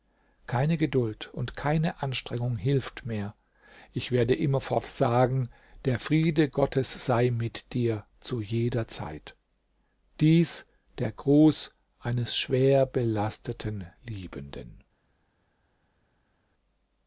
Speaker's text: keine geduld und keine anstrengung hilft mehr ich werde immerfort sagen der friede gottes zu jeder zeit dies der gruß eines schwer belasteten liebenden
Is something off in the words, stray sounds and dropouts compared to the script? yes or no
yes